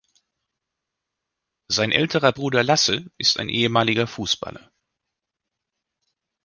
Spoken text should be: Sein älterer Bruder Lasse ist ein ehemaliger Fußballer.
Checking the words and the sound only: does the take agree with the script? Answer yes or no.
yes